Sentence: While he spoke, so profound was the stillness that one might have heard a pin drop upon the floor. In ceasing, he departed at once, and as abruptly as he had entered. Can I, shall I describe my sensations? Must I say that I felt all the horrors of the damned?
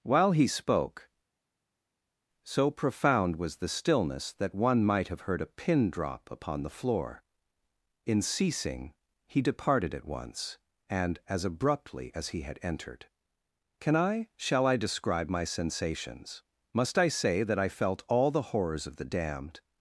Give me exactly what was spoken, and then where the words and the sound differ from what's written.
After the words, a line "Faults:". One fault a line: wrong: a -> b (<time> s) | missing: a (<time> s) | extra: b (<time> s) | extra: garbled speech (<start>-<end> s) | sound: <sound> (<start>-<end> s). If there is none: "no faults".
While he spoke, so profound was the stillness that one might have heard a pin drop upon the floor. In ceasing, he departed at once, and as abruptly as he had entered. Can I, shall I describe my sensations? Must I say that I felt all the horrors of the damned?
Faults:
no faults